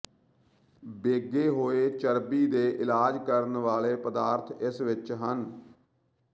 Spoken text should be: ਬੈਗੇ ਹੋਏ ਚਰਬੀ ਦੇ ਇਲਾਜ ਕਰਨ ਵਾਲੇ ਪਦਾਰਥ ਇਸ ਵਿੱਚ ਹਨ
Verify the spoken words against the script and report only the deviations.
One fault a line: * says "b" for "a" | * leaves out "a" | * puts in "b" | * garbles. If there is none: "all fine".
all fine